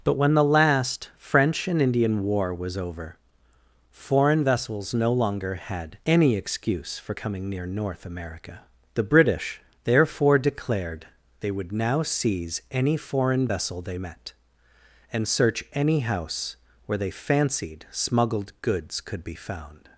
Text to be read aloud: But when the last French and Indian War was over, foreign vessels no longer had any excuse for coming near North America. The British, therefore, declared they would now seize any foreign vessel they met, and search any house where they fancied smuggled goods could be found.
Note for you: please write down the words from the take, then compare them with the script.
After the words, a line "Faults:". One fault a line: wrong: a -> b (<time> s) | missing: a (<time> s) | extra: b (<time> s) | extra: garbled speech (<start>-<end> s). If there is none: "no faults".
But when the last French and Indian War was over, foreign vessels no longer had any excuse for coming near North America. The British, therefore, declared they would now seize any foreign vessel they met, and search any house where they fancied smuggled goods could be found.
Faults:
no faults